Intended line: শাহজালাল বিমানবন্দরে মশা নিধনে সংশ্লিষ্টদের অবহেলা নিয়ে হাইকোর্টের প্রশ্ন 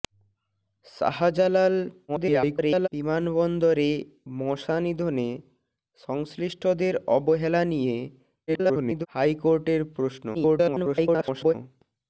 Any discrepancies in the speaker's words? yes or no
yes